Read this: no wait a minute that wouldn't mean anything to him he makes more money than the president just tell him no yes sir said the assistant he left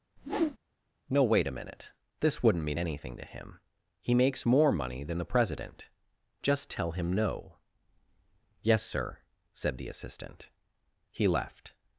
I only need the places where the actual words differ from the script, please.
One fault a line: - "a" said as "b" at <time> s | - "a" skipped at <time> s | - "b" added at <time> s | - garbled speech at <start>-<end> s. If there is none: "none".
- "that" said as "this" at 2.2 s